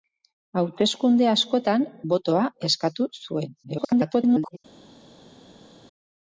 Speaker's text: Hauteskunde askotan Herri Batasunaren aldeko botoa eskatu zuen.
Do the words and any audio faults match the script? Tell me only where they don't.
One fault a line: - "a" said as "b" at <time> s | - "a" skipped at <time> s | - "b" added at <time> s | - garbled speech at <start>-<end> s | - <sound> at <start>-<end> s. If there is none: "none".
- "Herri Batasunaren aldeko" skipped at 1.8 s
- garbled speech at 3.6-4.6 s